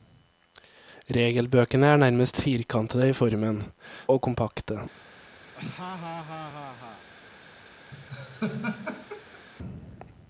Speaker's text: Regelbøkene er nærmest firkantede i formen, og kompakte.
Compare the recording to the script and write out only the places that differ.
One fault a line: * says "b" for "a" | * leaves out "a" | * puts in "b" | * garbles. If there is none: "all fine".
all fine